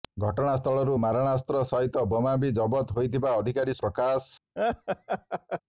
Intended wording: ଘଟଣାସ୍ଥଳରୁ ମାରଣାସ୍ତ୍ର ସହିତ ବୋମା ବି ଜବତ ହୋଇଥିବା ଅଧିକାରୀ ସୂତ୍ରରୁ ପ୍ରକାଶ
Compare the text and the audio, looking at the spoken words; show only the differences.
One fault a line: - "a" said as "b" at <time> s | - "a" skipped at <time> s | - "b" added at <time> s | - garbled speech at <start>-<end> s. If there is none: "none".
- "ସୂତ୍ରରୁ" skipped at 3.8 s